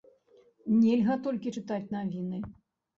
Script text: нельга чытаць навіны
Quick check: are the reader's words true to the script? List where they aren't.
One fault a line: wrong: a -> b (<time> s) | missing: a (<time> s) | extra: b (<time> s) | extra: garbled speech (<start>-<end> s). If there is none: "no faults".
extra: толькі (1.3 s)